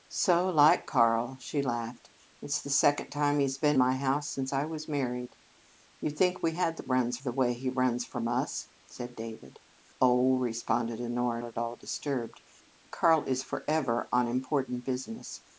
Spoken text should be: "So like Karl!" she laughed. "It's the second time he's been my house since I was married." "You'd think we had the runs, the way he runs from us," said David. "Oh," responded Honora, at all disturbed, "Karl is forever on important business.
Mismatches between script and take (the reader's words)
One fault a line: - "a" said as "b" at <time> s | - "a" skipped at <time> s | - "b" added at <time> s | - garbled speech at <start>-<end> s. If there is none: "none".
none